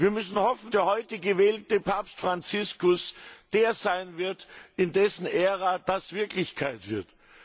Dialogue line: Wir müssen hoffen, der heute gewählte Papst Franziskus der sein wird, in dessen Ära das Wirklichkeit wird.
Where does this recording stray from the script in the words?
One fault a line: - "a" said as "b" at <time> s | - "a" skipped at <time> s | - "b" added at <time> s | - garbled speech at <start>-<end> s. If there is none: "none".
none